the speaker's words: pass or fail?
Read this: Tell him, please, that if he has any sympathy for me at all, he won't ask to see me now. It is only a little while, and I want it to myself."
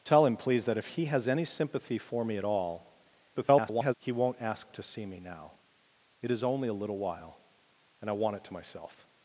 fail